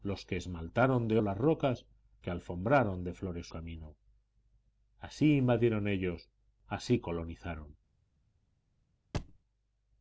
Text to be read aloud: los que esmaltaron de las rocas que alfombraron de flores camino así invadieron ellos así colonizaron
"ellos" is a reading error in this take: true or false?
false